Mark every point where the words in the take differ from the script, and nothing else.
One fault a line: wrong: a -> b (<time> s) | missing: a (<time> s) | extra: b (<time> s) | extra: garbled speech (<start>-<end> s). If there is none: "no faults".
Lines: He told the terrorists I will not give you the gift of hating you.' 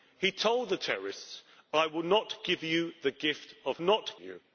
wrong: hating -> not (3.8 s)